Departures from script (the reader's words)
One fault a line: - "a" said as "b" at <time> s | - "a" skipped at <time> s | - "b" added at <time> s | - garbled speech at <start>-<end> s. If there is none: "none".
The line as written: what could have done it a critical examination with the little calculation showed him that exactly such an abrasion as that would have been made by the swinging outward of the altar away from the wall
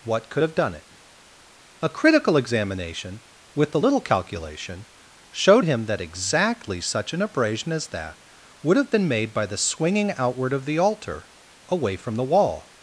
none